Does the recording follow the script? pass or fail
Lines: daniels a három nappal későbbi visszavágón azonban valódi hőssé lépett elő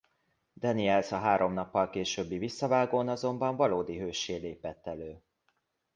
pass